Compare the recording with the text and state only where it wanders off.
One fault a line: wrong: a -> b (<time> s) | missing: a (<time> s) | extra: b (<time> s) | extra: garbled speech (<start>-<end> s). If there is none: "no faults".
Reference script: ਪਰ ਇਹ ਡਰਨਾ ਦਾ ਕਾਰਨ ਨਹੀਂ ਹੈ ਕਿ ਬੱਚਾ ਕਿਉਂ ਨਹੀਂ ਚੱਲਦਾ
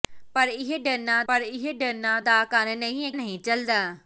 extra: ਪਰ ਇਹ ਡਰਨਾ (1.3 s)
missing: ਕਿ ਬੱਚਾ ਕਿਉਂ (3.1 s)